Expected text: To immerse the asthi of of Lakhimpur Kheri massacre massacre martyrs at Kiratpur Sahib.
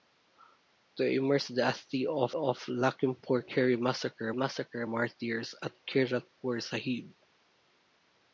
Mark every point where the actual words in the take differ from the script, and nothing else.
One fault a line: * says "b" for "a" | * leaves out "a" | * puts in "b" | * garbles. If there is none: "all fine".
all fine